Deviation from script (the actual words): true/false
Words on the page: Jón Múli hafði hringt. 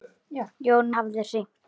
true